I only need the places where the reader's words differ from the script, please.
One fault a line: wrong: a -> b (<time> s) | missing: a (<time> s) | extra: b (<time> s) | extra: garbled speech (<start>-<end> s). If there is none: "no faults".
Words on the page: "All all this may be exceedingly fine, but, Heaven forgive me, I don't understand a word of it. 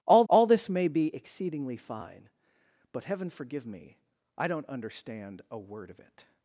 no faults